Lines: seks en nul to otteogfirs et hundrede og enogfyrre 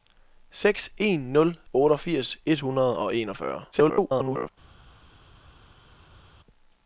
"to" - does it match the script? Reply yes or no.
no